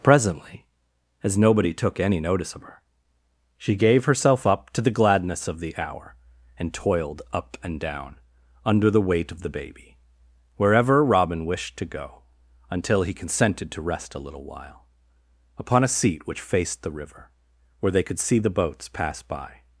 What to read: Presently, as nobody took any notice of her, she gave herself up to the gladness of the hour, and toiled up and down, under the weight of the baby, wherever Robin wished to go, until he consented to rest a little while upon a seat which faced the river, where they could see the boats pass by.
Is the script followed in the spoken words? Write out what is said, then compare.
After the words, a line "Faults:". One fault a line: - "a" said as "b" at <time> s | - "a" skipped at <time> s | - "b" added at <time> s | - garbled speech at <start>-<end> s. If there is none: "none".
Presently, as nobody took any notice of her, she gave herself up to the gladness of the hour, and toiled up and down, under the weight of the baby, wherever Robin wished to go, until he consented to rest a little while upon a seat which faced the river, where they could see the boats pass by.
Faults:
none